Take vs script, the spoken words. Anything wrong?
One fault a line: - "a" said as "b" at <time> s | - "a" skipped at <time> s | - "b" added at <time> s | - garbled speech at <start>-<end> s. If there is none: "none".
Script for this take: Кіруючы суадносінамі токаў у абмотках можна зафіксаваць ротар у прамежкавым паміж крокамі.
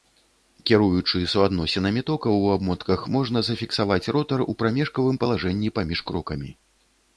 - "палажэнні" added at 5.3 s